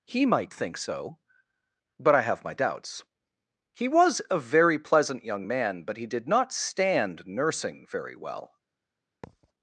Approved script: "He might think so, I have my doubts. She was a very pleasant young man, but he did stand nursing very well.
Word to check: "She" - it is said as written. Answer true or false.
false